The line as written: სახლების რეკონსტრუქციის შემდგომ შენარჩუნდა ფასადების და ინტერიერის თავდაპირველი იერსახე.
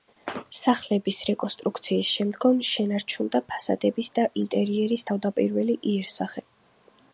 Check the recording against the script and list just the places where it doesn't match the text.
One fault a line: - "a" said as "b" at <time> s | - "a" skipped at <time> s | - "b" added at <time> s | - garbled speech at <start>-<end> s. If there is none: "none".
none